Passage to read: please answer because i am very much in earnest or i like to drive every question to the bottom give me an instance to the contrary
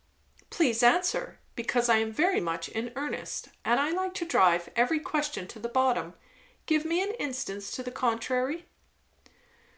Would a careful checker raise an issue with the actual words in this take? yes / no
yes